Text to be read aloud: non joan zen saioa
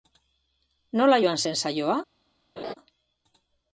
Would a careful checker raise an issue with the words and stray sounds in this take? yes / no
yes